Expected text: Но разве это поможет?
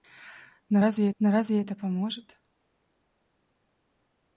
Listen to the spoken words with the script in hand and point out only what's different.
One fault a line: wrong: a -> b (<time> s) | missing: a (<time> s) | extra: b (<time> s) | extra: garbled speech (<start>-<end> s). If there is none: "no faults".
extra: но разве (1.2 s)